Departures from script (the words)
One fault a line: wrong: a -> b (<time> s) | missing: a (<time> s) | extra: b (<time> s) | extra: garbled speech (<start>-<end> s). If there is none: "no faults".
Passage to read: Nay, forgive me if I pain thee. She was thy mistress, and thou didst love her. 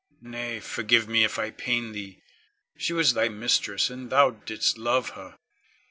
no faults